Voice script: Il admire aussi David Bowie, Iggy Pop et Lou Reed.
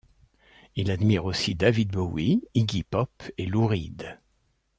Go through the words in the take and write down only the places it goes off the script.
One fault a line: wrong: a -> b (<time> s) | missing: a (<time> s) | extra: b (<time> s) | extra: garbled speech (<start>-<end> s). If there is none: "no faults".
no faults